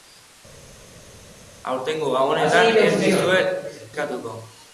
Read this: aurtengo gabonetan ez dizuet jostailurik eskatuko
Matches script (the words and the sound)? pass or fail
fail